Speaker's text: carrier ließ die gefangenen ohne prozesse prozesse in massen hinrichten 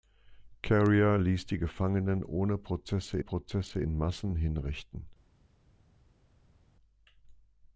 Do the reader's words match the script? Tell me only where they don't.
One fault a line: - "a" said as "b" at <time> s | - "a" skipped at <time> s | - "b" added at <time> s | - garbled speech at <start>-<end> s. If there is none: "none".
none